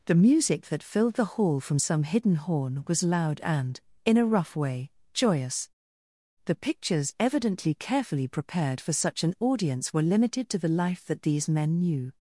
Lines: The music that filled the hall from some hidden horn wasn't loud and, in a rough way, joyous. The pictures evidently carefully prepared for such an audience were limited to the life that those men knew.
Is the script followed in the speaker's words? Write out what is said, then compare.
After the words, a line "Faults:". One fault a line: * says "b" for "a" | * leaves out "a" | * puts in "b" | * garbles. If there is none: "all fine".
The music that filled the hall from some hidden horn was loud and, in a rough way, joyous. The pictures evidently carefully prepared for such an audience were limited to the life that these men knew.
Faults:
* says "was" for "wasn't"
* says "these" for "those"